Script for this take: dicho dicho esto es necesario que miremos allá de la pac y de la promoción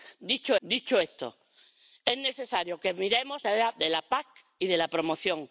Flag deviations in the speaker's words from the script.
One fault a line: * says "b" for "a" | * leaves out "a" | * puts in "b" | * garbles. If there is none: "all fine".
all fine